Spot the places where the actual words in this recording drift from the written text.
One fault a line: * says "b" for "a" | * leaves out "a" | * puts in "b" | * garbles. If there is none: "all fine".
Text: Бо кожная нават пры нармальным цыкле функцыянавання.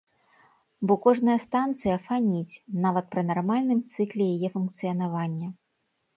* puts in "станцыя фаніць"
* puts in "яе"